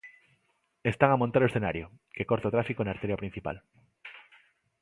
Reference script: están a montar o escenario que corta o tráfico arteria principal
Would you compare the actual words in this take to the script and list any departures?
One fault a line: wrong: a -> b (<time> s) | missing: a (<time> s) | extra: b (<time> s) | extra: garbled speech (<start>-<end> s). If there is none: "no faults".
extra: na (2.8 s)